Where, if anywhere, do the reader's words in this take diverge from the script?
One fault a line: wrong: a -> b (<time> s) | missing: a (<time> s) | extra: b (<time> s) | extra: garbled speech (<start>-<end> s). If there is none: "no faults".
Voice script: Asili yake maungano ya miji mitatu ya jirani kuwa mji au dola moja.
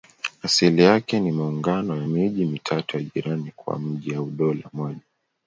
extra: ni (1.2 s)